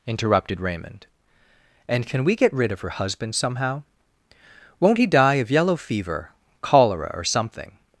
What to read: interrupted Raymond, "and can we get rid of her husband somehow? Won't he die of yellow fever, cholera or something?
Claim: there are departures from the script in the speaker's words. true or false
false